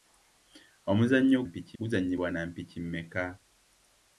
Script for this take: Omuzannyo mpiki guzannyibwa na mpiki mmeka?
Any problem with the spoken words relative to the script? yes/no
no